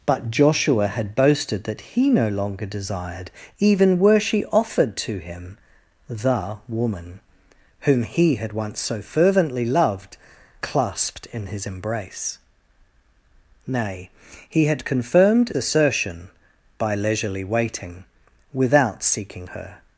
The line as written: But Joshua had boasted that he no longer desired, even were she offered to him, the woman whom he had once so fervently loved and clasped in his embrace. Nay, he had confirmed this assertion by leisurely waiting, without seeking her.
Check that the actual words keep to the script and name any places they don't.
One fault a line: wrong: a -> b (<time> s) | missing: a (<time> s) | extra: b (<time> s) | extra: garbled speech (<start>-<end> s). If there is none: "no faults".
missing: and (10.2 s)
missing: this (15.5 s)